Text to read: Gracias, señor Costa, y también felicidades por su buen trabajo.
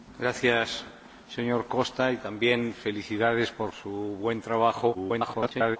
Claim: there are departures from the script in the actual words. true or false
true